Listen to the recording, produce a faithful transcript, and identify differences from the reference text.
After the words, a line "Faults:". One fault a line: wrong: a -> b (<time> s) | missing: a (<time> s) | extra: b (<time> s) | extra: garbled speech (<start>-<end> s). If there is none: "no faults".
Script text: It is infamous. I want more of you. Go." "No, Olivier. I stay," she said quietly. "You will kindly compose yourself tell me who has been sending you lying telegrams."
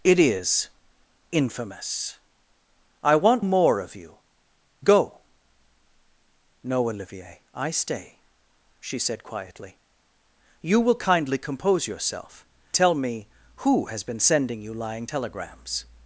It is infamous. I want more of you. Go." "No, Olivier. I stay," she said quietly. "You will kindly compose yourself tell me who has been sending you lying telegrams."
Faults:
no faults